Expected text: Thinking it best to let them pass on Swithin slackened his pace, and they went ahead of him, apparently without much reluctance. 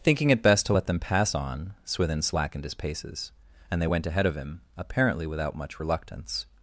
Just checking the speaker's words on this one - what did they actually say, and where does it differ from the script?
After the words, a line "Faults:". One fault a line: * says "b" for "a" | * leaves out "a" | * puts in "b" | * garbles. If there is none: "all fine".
Thinking it best to let them pass on Swithin slackened his paces, and they went ahead of him, apparently without much reluctance.
Faults:
* says "paces" for "pace"